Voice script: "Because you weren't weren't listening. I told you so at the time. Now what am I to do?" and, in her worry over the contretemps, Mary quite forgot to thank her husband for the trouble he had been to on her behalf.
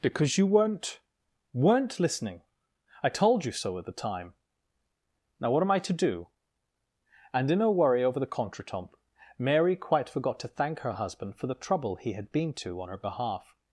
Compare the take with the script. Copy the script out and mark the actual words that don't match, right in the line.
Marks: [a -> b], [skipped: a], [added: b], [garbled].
"Because you weren't weren't listening. I told you so at the time. Now what am I to do?" and, in her worry over the contretemps, Mary quite forgot to thank her husband for the trouble he had been to on her behalf.